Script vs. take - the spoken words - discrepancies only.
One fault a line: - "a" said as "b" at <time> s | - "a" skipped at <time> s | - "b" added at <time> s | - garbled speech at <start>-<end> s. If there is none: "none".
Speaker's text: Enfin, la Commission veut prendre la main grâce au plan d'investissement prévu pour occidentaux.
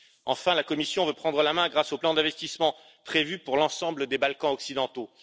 - "l'ensemble des Balkans" added at 3.6 s